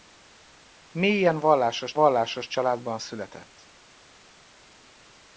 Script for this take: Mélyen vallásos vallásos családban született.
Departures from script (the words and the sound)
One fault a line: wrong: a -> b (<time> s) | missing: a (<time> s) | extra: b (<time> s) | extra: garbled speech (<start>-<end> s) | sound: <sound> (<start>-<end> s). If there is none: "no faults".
no faults